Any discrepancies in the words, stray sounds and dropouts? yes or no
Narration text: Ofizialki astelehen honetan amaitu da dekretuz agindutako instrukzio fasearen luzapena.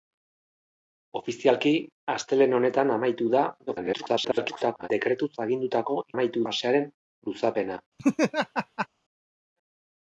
yes